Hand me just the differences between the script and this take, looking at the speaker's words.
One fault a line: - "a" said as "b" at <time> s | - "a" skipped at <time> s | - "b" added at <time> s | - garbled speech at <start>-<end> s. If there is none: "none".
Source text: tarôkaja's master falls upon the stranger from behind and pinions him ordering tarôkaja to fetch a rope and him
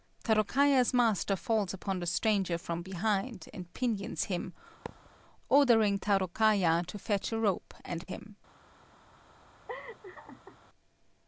none